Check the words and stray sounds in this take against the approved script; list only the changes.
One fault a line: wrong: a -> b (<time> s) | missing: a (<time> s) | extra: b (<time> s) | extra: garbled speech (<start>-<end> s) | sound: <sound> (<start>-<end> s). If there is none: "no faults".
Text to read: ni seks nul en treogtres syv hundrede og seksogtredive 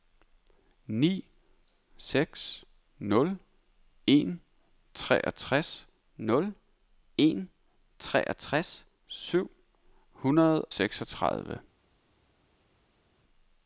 extra: nul en treogtres (6.2 s)
missing: og (10.7 s)